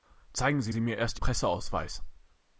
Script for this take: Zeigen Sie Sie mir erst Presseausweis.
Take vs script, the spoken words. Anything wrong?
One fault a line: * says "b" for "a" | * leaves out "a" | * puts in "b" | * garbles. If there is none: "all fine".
all fine